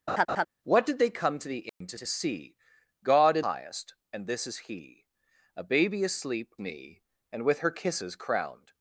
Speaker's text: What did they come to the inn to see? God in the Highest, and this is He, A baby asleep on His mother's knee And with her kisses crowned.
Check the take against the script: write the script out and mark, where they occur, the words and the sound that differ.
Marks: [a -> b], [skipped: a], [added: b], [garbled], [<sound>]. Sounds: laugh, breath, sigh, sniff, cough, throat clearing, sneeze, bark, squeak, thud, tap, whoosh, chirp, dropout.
[laugh] What did they come to the inn [dropout] to [added: to] see? God in [skipped: the] Highest, and this is He, A baby asleep [skipped: on His mother's] knee And with her kisses crowned.